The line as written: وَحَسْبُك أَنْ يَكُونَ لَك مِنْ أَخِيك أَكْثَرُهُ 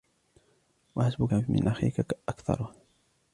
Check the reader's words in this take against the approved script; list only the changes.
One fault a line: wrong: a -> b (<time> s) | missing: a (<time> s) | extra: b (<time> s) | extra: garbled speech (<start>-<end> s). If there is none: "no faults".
missing: أَنْ يَكُونَ لَك (1.3 s)